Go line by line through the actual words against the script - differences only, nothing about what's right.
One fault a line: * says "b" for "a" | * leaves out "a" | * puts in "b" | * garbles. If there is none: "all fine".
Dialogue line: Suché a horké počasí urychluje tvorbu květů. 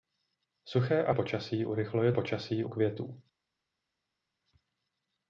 * leaves out "horké"
* says "počasí" for "tvorbu"